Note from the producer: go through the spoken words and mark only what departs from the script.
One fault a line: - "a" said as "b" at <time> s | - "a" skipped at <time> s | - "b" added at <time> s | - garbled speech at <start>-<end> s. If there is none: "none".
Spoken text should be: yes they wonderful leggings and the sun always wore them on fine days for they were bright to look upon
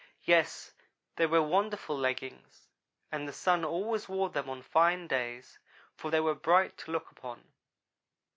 - "were" added at 1.3 s